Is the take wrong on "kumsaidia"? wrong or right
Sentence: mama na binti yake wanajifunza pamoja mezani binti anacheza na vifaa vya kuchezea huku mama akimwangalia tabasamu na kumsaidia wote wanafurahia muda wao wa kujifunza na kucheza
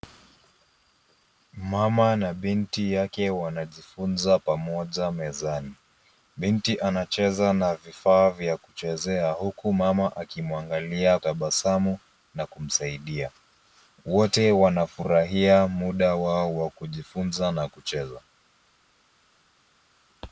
right